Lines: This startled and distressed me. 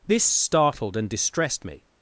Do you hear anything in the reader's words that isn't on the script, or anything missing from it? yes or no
no